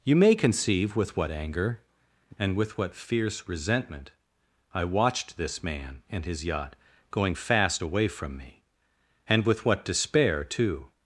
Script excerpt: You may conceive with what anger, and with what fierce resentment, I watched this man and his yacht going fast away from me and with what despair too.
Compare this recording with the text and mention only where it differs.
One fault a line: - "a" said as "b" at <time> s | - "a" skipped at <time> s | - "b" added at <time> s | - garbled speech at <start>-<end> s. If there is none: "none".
none